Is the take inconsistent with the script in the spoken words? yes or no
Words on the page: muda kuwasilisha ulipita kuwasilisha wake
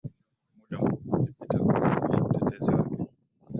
yes